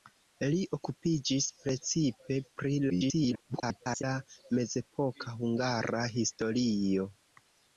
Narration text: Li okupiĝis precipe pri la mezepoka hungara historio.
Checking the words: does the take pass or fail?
fail